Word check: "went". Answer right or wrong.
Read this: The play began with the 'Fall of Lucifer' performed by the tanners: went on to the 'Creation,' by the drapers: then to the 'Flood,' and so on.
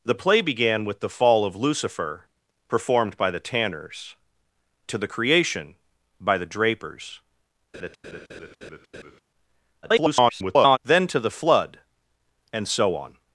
wrong